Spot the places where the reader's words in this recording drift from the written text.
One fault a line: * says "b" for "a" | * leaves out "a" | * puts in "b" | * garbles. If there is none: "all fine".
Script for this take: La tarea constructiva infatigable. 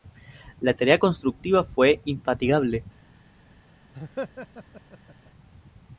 * puts in "fue"